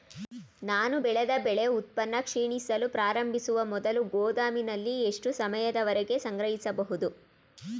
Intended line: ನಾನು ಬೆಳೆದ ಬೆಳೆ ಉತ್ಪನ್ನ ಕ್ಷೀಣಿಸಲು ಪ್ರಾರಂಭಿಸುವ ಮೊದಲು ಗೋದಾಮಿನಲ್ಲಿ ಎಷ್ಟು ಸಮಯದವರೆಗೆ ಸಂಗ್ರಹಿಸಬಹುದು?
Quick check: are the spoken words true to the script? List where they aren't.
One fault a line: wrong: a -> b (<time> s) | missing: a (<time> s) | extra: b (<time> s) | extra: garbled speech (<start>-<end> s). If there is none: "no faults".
no faults